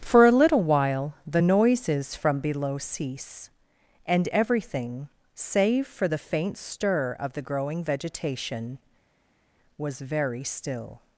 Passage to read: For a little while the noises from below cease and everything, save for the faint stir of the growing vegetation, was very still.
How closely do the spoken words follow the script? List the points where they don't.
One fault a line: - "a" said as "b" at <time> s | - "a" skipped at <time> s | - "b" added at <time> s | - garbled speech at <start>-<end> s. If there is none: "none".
none